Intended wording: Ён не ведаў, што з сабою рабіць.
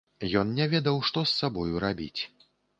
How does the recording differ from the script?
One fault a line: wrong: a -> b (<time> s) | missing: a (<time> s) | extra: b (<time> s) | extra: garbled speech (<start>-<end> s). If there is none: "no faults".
no faults